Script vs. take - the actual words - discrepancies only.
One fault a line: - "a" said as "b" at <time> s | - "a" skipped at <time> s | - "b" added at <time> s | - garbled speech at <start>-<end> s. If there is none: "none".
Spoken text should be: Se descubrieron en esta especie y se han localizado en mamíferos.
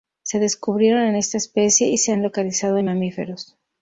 none